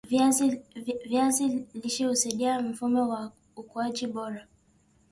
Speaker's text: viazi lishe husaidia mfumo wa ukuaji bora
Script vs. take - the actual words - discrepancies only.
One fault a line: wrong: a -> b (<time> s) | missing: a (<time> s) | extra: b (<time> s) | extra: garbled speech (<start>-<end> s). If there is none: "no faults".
no faults